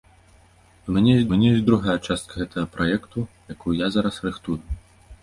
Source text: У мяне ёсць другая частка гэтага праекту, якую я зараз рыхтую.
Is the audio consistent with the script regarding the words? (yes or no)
no